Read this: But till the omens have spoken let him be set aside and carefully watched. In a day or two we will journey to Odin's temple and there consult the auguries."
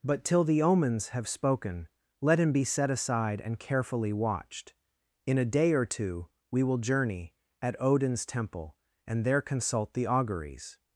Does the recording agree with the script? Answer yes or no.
no